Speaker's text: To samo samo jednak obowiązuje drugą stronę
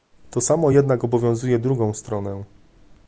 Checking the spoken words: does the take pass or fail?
fail